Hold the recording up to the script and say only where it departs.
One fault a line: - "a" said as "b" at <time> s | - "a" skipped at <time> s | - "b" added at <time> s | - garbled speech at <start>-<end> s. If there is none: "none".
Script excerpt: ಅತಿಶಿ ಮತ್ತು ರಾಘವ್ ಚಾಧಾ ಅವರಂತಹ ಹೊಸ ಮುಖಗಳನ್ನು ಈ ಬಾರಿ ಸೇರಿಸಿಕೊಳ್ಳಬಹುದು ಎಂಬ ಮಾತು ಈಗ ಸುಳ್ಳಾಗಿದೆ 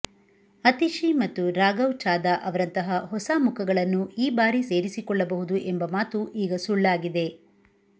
none